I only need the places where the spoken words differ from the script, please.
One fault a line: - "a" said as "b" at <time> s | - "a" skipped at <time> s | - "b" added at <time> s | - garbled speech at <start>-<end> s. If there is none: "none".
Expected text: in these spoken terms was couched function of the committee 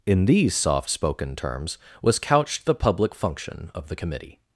- "soft" added at 0.6 s
- "the public" added at 2.6 s